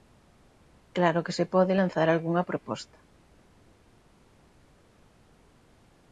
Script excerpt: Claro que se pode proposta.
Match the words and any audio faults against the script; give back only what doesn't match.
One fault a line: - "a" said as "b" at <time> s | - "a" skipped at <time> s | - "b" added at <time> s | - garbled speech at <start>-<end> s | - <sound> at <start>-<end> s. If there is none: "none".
- "lanzar algunha" added at 1.8 s